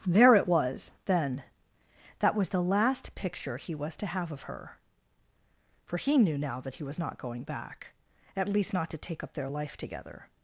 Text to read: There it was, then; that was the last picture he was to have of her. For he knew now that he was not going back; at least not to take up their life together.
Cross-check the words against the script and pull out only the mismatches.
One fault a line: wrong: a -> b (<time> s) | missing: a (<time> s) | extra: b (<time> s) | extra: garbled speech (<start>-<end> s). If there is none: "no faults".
no faults